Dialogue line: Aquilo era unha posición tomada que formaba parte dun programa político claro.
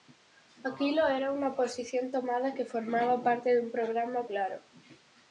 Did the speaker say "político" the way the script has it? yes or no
no